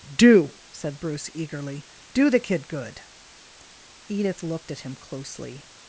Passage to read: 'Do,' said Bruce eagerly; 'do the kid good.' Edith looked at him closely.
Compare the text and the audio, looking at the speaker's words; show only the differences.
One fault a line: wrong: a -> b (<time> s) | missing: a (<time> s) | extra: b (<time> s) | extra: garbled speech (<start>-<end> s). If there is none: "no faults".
no faults